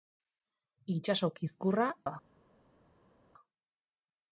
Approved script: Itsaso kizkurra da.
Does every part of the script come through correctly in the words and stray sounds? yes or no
yes